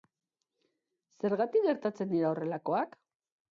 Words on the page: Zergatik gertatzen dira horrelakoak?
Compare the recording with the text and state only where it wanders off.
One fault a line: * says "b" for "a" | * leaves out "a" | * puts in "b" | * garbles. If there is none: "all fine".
all fine